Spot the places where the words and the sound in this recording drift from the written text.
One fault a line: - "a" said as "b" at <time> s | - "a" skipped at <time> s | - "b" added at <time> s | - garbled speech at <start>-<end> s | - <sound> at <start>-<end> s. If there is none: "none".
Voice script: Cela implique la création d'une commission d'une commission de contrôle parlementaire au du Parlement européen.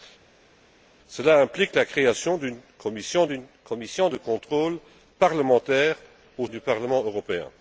none